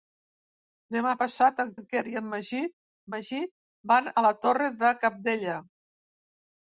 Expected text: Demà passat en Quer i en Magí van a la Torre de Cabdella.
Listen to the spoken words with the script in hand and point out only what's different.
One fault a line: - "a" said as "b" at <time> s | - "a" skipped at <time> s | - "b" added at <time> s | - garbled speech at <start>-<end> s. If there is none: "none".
- "en" added at 1.8 s
- "Magí" added at 3.1 s